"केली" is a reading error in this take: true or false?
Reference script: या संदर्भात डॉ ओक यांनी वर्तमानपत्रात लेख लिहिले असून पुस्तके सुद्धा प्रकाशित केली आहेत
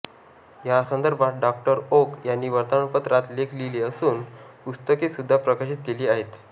false